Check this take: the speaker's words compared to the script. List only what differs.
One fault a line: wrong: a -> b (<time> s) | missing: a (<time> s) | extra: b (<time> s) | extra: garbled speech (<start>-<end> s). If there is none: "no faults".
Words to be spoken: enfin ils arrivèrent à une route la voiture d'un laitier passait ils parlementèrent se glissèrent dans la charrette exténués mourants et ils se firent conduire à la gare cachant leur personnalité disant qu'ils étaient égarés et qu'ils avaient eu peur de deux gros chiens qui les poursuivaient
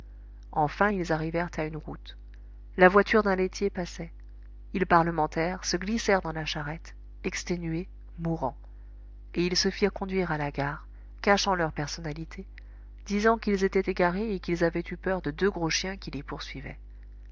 no faults